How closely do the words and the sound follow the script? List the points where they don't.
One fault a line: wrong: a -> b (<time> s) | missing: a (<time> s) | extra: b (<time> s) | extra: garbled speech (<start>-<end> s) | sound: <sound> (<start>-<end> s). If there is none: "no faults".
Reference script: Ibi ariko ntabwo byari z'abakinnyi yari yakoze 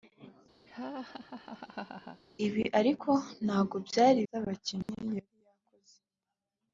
sound: laugh (0.7-2.2 s)
sound: dropout (4.8-4.9 s)